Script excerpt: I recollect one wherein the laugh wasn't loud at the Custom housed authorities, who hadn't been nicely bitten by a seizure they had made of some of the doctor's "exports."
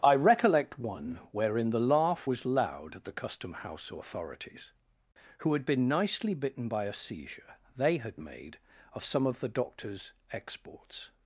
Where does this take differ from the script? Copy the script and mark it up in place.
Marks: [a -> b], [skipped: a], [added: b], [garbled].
I recollect one wherein the laugh [wasn't -> was] loud at the Custom [housed -> house] authorities, who [hadn't -> had] been nicely bitten by a seizure they had made of some of the doctor's "exports."